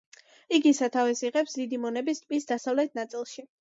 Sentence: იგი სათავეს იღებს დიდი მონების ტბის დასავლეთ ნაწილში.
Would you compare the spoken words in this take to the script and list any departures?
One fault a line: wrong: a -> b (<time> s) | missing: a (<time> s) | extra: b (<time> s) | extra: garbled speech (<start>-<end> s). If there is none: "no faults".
no faults